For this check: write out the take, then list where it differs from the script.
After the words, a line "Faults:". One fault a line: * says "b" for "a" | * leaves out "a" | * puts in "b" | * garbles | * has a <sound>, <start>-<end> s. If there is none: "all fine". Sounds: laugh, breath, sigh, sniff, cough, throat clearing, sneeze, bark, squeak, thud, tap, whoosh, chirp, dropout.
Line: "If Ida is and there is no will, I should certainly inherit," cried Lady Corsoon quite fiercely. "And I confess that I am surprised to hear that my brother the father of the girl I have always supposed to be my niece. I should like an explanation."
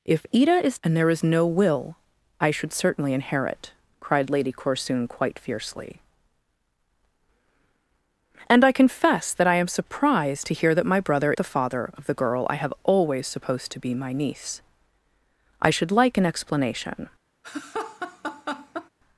"If Ida is and there is no will, I should certainly inherit," cried Lady Corsoon quite fiercely. "And I confess that I am surprised to hear that my brother the father of the girl I have always supposed to be my niece. I should like an explanation."
Faults:
* has a laugh, 17.4-18.9 s